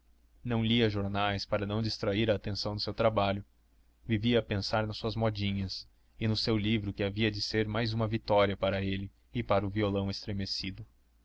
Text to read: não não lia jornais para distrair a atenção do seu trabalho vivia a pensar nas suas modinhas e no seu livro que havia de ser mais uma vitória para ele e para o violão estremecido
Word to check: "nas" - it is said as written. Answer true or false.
true